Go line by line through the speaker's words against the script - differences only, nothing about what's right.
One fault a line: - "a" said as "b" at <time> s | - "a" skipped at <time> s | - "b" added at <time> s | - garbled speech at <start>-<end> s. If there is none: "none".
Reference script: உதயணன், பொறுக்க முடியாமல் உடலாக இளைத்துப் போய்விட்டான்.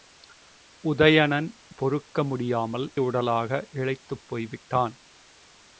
none